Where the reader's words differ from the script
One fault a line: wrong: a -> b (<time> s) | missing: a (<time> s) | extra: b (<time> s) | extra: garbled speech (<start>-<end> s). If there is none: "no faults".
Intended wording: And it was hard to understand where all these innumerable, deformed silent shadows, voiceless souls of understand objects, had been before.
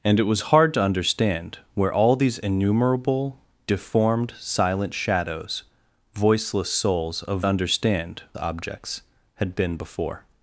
no faults